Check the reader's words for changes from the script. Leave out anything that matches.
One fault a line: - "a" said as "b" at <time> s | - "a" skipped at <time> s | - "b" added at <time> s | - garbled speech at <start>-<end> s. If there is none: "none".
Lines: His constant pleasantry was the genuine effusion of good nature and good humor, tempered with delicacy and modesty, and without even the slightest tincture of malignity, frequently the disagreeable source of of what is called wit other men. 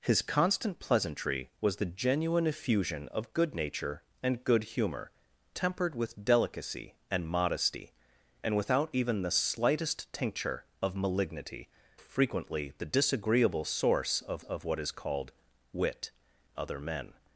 none